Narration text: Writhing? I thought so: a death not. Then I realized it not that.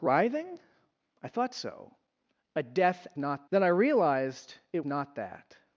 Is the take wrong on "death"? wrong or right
right